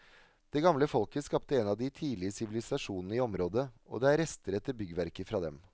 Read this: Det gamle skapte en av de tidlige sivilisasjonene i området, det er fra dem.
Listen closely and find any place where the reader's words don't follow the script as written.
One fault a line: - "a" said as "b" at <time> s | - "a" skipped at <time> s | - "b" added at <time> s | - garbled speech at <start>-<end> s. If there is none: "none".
- "folket" added at 0.9 s
- "og" added at 3.9 s
- "rester etter byggverker" added at 4.2 s